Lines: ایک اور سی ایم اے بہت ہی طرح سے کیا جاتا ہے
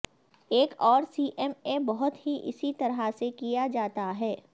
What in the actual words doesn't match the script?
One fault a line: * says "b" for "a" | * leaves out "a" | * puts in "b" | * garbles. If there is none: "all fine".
* puts in "اسی"